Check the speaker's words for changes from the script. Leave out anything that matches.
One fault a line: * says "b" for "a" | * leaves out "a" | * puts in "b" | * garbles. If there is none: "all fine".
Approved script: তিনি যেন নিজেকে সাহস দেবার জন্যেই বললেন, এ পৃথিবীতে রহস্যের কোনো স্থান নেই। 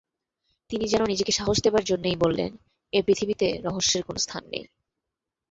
all fine